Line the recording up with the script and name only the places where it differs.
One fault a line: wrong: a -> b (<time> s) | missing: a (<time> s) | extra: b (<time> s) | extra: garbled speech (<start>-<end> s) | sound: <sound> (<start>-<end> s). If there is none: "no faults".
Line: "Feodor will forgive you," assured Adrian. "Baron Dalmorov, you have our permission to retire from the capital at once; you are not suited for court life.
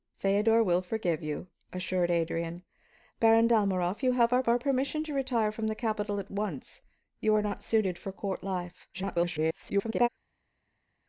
extra: our (4.5 s)
extra: garbled speech (8.9-10.1 s)